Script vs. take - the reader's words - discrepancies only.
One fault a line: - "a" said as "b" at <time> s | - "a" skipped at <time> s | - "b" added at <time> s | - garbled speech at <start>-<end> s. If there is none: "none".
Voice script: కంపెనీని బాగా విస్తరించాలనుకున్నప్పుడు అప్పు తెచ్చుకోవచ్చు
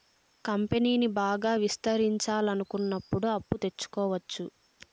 none